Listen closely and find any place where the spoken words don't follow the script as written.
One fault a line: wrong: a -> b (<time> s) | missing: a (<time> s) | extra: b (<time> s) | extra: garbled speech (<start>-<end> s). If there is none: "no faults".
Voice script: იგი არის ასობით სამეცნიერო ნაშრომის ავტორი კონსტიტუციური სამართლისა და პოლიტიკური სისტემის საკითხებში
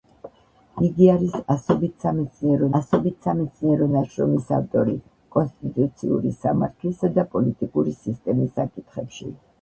extra: ასობით სამეცნიერო (2.8 s)